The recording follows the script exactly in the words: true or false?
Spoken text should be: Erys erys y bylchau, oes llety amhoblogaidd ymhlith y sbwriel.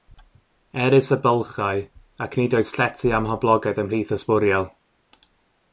false